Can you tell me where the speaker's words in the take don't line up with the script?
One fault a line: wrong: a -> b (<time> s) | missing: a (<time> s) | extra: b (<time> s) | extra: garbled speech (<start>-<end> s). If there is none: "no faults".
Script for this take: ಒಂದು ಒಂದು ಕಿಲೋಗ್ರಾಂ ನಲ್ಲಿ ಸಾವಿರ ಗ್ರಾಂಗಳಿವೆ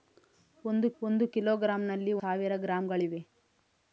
no faults